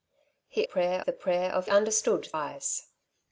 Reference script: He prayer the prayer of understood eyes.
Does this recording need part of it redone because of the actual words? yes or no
no